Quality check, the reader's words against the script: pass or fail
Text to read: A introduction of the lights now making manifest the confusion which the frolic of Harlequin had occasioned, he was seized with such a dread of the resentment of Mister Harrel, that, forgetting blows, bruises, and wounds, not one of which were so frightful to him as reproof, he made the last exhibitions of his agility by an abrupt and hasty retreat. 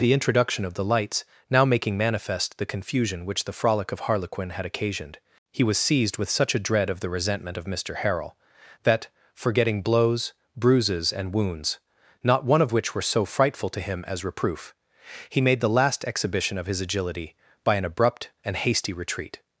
fail